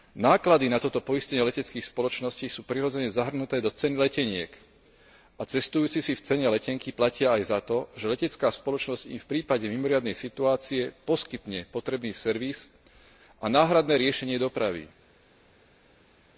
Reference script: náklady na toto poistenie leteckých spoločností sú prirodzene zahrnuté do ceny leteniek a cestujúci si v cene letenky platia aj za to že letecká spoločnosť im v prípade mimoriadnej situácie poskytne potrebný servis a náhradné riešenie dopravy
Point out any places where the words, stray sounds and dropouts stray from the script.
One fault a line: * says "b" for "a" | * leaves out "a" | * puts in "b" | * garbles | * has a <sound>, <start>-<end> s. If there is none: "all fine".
all fine